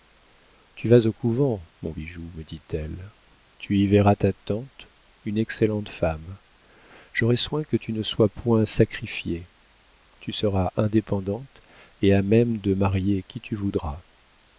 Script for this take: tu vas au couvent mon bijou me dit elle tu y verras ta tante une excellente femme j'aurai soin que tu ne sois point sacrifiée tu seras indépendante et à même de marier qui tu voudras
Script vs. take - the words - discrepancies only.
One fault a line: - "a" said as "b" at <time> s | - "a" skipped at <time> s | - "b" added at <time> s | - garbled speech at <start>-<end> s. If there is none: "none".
none